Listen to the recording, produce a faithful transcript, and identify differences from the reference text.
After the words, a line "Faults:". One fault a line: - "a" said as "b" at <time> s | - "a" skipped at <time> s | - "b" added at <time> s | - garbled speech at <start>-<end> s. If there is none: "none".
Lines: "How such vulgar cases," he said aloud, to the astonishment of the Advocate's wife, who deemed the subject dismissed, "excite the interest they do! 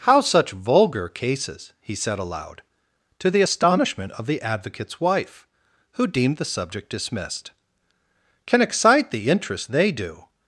"How such vulgar cases," he said aloud, to the astonishment of the Advocate's wife, who deemed the subject dismissed, "can excite the interest they do!
Faults:
- "can" added at 8.4 s